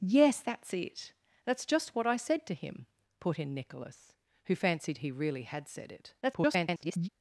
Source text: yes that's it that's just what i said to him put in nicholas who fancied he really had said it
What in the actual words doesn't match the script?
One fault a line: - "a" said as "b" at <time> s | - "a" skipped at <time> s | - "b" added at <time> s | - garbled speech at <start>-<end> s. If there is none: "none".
- garbled speech at 6.2-7.1 s